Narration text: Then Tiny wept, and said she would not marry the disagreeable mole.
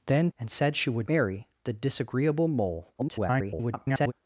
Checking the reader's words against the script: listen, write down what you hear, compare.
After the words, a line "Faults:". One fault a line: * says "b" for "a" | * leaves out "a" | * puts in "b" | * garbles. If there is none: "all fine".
Then And said she would marry the disagreeable mole. [garbled]
Faults:
* leaves out "Tiny wept"
* leaves out "not"
* garbles